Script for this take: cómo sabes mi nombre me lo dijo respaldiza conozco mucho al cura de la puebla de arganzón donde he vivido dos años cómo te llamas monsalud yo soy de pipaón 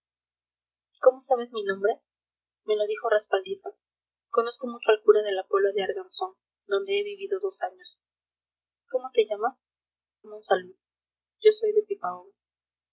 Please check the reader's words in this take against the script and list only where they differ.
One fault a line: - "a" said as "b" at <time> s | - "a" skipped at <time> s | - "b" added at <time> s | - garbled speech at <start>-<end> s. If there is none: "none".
none